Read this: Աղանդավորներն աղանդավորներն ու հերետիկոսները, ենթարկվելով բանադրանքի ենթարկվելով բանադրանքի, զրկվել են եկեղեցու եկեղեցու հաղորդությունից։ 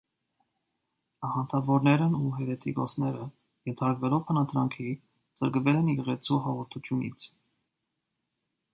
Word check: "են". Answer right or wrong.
right